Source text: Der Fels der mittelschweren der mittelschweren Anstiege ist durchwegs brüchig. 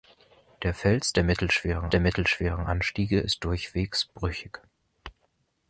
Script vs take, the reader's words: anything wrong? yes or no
no